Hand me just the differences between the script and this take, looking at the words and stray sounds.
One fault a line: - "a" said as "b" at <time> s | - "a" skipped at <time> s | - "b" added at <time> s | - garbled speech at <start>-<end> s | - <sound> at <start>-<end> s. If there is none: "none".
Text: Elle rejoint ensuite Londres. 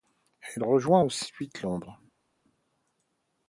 none